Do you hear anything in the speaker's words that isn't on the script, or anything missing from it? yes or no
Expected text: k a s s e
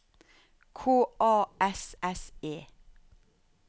no